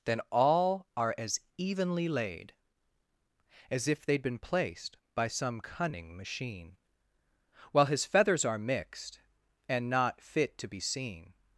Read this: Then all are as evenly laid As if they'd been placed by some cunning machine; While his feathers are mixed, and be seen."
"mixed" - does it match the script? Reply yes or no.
yes